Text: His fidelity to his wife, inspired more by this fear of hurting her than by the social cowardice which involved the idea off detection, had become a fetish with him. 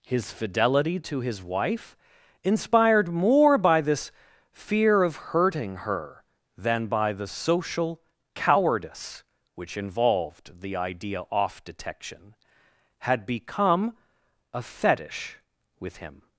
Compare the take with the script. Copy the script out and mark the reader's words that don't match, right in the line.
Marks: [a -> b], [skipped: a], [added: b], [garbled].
His fidelity to his wife, inspired more by this fear of hurting her than by the social cowardice which involved the idea off detection, had become a fetish with him.